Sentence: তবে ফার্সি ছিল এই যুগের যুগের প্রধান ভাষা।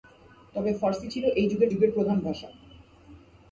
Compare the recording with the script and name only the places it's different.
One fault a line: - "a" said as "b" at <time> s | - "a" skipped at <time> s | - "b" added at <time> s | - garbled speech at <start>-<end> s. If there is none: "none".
none